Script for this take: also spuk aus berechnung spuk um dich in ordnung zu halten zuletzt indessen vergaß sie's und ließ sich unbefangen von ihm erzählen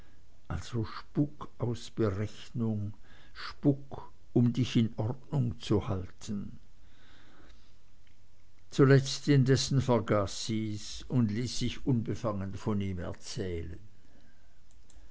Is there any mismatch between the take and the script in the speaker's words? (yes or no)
no